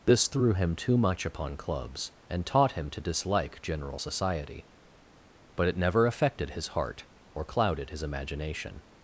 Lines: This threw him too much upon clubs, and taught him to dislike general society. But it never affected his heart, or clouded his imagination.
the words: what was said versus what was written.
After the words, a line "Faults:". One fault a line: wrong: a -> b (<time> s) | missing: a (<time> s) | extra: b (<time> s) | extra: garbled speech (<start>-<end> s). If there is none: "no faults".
This threw him too much upon clubs, and taught him to dislike general society. But it never affected his heart, or clouded his imagination.
Faults:
no faults